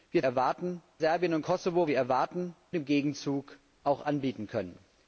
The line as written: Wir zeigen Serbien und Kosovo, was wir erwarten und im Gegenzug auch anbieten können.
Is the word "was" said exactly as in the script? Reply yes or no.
no